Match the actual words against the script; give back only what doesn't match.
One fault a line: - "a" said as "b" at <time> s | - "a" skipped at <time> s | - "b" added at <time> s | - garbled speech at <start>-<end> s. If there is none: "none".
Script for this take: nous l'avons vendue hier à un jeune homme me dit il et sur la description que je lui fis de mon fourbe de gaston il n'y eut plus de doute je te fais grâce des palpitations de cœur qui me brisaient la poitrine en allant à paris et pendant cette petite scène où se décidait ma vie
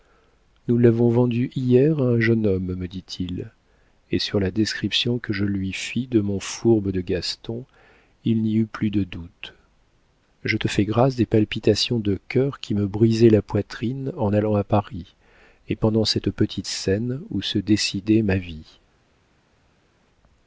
none